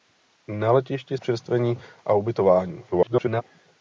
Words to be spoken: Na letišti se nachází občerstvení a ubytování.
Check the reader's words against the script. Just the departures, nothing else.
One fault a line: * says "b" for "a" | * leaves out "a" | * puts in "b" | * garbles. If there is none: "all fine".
* leaves out "se nachází"
* garbles